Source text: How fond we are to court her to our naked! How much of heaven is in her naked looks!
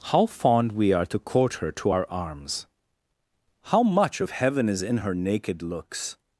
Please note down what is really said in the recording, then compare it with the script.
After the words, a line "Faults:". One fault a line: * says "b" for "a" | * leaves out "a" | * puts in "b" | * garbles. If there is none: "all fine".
How fond we are to court her to our arms! How much of heaven is in her naked looks!
Faults:
* says "arms" for "naked"